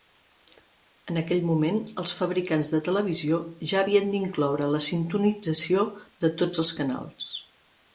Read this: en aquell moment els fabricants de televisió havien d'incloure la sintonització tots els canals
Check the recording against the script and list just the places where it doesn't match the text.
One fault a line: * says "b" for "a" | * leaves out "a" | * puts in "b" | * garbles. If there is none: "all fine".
* puts in "ja"
* puts in "de"